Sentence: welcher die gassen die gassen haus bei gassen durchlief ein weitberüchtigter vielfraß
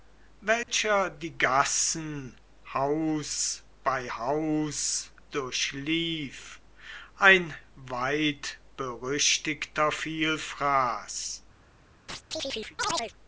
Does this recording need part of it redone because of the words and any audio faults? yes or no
yes